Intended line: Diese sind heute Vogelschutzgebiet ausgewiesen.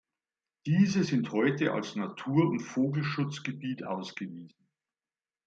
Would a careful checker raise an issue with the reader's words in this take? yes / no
yes